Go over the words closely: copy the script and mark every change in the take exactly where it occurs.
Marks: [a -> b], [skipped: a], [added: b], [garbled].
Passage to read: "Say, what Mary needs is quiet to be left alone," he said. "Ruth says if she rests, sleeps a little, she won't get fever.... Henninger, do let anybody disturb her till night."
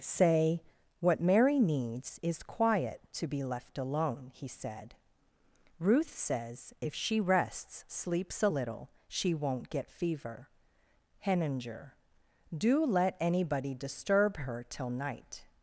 "Say, what Mary needs is quiet to be left alone," he said. "Ruth says if she rests, sleeps a little, she won't get fever.... Henninger, do let anybody disturb her till night."